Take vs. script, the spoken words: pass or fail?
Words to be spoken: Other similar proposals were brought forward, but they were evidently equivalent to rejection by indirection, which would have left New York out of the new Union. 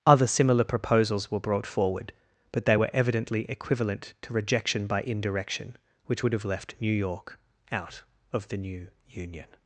pass